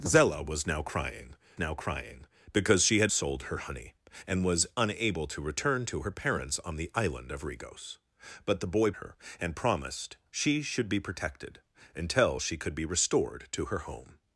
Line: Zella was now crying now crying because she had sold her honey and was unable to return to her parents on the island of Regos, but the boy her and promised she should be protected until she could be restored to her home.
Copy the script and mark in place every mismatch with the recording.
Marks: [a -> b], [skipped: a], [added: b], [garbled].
Zella was now crying now crying because she had sold her honey and was unable to return to her parents on the island of Regos, but the boy her and promised she should be protected until she could be restored to her home.